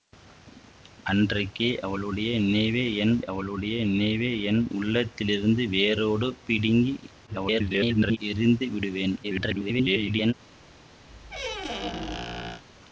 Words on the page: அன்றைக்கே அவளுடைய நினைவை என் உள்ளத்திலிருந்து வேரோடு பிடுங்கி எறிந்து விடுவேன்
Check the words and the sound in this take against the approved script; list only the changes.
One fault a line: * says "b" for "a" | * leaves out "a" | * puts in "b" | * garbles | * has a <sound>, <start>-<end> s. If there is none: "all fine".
* puts in "அவளுடைய நினைவை என்"
* garbles
* garbles
* has a squeak, 11.1-12.6 s